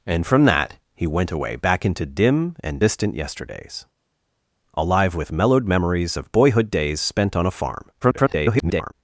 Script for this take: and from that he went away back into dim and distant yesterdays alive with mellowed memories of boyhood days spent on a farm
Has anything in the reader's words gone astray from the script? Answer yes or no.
yes